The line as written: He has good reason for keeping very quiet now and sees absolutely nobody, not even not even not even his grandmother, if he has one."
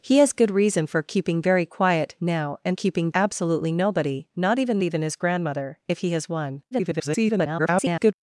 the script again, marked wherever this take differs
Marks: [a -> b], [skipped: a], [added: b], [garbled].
He has good reason for keeping very quiet now and [sees -> keeping] absolutely nobody, not even [skipped: not even not] even his grandmother, if he has one." [garbled]